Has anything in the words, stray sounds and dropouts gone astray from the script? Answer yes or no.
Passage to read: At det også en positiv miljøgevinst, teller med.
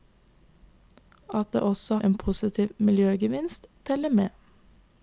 no